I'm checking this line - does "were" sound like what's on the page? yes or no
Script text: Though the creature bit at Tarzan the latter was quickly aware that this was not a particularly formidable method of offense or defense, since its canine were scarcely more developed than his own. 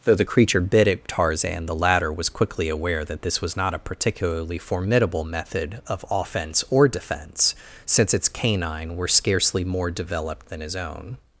yes